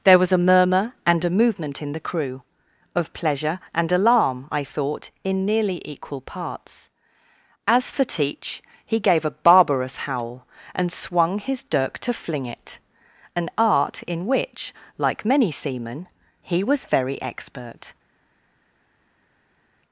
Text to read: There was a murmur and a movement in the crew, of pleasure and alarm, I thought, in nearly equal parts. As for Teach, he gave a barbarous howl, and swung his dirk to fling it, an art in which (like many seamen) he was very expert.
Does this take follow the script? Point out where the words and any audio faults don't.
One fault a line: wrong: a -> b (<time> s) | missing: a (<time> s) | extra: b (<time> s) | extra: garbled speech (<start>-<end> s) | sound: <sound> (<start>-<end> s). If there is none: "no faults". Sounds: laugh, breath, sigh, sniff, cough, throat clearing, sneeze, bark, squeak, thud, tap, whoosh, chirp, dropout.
no faults